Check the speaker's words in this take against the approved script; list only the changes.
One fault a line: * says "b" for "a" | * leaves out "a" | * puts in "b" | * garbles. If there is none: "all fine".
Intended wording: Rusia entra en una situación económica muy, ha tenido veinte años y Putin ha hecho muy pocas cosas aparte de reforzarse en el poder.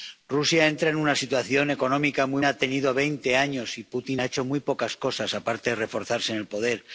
all fine